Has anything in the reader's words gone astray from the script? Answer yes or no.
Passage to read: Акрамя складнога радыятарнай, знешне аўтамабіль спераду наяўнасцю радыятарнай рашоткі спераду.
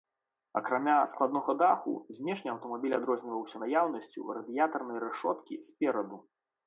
yes